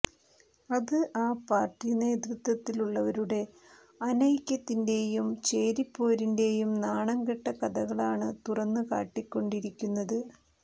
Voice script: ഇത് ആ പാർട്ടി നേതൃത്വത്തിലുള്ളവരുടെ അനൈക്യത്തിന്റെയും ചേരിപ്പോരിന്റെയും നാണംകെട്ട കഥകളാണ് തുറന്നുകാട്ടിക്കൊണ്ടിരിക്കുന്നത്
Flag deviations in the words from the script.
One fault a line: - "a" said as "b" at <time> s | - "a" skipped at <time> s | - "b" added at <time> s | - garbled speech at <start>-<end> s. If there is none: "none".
- "ഇത്" said as "അത്" at 0.7 s